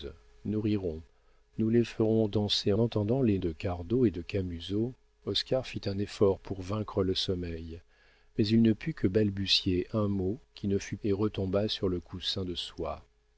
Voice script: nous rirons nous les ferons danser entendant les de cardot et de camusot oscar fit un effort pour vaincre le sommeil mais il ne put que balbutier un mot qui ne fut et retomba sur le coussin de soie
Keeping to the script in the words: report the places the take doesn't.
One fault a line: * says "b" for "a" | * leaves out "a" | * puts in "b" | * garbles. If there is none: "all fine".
all fine